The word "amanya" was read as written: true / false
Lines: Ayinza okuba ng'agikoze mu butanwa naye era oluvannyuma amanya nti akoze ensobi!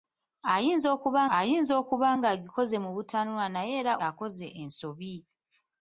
false